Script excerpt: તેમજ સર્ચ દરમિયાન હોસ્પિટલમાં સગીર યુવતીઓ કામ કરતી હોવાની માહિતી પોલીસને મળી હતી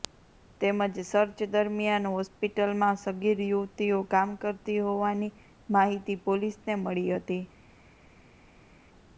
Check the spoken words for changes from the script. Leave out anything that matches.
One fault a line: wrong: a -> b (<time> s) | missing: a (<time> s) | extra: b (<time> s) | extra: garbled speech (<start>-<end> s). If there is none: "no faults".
no faults